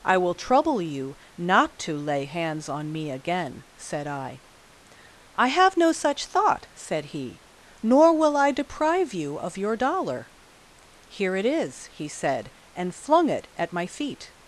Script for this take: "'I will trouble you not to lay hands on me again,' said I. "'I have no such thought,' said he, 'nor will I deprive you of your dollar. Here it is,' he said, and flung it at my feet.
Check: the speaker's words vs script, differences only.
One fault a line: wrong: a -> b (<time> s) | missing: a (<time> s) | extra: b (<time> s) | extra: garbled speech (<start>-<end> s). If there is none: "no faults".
no faults